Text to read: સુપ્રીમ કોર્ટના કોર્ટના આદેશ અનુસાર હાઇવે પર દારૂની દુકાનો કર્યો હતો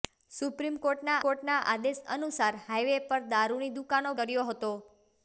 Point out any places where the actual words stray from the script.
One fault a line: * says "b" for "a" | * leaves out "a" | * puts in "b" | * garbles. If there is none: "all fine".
all fine